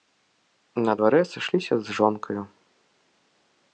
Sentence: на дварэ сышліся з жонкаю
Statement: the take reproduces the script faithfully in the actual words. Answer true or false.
true